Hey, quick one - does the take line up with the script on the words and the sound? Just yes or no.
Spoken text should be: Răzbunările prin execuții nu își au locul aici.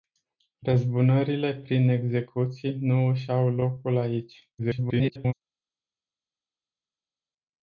no